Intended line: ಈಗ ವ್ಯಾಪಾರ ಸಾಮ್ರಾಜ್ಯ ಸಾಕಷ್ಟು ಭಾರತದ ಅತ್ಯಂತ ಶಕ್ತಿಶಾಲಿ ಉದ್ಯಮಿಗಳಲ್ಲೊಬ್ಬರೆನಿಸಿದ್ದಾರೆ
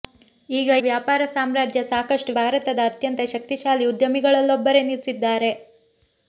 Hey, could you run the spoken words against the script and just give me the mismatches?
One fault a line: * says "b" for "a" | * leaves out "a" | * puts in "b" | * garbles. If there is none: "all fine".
all fine